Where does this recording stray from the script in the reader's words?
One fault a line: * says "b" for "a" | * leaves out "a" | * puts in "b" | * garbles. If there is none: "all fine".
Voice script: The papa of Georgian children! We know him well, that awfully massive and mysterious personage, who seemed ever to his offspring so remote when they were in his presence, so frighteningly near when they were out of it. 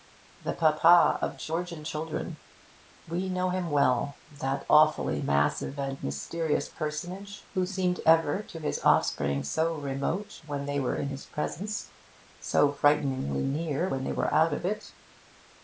all fine